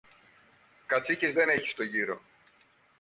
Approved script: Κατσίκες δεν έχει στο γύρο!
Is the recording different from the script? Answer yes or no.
no